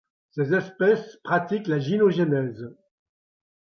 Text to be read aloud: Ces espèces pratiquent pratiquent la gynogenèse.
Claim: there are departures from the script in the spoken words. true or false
true